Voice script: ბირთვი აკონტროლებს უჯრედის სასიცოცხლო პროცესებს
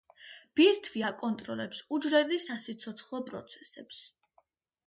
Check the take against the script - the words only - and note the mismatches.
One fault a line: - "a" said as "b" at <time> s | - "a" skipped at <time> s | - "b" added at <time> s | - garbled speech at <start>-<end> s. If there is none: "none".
none